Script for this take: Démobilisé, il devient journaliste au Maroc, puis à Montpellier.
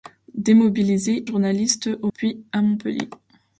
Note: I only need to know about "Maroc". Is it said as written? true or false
false